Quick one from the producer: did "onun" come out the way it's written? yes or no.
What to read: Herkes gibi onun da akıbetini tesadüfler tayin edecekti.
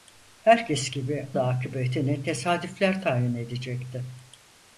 no